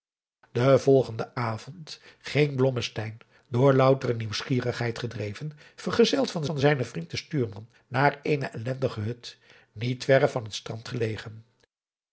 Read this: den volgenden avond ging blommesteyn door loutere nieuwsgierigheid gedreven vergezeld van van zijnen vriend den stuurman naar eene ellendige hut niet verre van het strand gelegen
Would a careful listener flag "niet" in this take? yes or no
no